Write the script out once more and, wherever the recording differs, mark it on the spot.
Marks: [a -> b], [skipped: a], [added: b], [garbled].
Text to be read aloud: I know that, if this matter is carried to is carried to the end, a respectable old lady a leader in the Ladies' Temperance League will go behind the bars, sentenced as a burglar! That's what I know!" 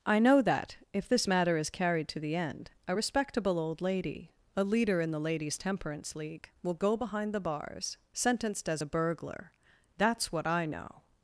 I know that, if this matter is carried to [skipped: is carried to] the end, a respectable old lady a leader in the Ladies' Temperance League will go behind the bars, sentenced as a burglar! That's what I know!"